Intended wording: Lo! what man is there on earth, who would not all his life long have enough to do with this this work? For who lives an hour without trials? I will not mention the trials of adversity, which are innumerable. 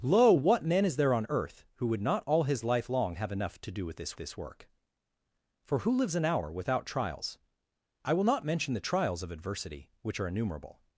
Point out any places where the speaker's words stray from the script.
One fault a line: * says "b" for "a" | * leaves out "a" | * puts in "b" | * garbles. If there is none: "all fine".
all fine